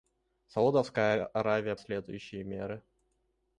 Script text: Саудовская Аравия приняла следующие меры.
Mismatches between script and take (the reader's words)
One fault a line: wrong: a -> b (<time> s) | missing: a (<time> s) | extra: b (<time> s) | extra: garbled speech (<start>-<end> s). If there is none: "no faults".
missing: приняла (1.8 s)